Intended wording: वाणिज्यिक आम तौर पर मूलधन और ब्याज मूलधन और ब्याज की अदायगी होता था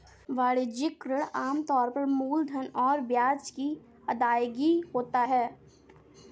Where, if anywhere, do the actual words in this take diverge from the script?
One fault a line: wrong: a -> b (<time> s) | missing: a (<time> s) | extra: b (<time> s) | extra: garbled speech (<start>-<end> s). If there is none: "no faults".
extra: ऋण (1.1 s)
missing: मूलधन और ब्याज (3.5 s)
wrong: था -> है (5.2 s)